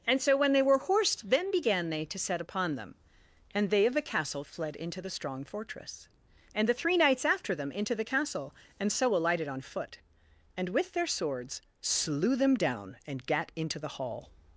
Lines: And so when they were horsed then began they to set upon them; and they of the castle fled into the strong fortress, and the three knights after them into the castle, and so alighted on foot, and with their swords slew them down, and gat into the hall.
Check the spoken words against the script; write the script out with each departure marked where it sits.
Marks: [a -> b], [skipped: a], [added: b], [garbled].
And so when they were horsed then began they to set upon them; and they of the castle fled into the strong fortress, and the three knights after them into the castle, and so alighted on foot, and with their swords slew them down, and gat into the hall.